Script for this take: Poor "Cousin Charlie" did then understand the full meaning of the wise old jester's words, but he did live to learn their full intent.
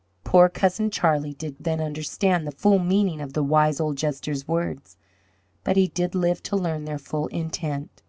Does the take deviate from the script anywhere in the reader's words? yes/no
no